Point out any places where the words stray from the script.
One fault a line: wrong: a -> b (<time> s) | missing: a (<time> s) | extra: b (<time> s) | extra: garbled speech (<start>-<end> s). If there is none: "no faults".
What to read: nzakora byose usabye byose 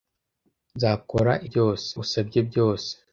no faults